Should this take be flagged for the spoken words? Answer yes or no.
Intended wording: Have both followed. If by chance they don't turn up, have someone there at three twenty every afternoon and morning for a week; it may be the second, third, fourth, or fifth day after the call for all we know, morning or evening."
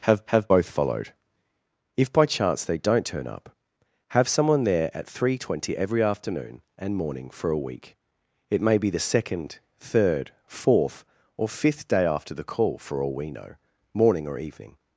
yes